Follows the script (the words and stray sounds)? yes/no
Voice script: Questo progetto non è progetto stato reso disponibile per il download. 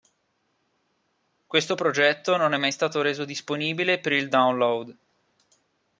no